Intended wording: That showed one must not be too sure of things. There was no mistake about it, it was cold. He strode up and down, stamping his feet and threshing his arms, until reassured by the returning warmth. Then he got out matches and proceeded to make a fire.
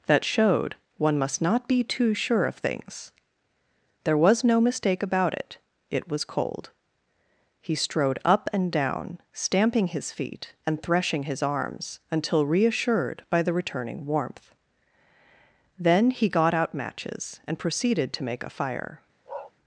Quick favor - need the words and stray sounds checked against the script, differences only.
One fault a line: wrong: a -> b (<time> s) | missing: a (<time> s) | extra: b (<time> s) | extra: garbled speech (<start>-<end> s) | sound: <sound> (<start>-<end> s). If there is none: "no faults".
sound: bark (19.3-19.5 s)